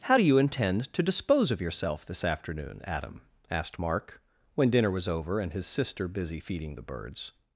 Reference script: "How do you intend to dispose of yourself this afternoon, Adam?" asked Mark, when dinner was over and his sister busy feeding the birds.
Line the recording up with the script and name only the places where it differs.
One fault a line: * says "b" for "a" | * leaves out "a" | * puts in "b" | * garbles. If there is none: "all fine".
all fine